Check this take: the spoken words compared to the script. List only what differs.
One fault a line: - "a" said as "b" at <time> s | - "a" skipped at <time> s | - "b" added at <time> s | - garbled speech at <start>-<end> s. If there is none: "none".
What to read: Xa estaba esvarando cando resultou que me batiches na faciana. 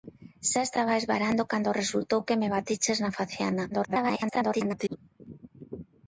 - garbled speech at 3.7-5.0 s